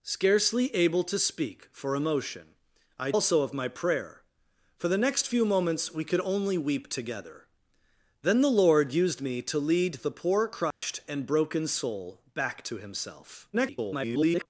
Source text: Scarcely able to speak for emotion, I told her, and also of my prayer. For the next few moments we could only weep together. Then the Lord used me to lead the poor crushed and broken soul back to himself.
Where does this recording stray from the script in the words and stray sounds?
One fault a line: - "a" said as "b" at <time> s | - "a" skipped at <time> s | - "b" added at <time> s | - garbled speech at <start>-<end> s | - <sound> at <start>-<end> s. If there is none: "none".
- "told her and" skipped at 3.1 s
- dropout at 10.7-10.8 s
- garbled speech at 13.5-14.5 s